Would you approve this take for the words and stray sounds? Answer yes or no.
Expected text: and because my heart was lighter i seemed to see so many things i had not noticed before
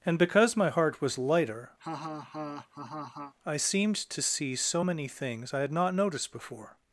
no